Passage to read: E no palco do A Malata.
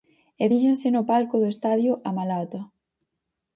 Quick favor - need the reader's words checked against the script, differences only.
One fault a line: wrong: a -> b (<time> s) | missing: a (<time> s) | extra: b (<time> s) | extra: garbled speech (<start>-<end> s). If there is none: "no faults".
extra: fíxense (0.5 s)
extra: Estadio (1.5 s)